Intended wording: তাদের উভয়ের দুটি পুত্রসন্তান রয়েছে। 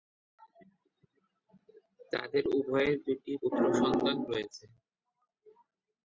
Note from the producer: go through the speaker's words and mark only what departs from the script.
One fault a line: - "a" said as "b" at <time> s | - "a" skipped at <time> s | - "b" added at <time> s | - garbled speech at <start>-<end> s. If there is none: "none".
none